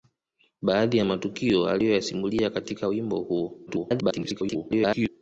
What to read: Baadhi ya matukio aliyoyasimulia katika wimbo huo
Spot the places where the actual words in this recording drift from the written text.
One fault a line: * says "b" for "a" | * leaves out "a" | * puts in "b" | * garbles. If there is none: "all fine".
* garbles